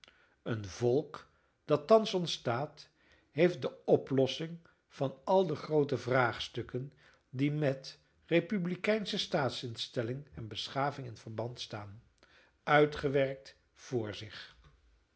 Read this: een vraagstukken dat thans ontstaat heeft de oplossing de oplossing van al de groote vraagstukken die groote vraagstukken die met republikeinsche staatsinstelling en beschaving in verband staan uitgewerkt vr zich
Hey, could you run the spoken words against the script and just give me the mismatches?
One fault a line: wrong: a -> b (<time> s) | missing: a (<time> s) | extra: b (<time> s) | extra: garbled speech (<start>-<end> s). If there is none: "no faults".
wrong: vraagstukken -> volk (0.7 s)
missing: de oplossing (4.6 s)
missing: groote vraagstukken die (7.5 s)